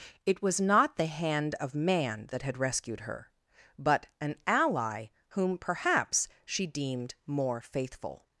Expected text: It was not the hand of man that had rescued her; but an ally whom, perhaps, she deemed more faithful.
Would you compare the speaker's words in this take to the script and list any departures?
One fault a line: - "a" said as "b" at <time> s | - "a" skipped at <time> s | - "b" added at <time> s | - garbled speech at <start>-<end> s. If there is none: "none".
none